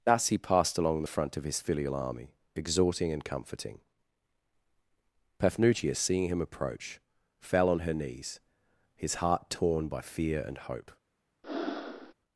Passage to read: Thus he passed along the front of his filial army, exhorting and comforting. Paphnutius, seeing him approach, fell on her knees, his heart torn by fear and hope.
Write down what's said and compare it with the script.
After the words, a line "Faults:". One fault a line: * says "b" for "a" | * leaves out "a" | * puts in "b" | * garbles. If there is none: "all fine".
Thus he passed along the front of his filial army, exhorting and comforting. Paphnutius, seeing him approach, fell on her knees, his heart torn by fear and hope.
Faults:
all fine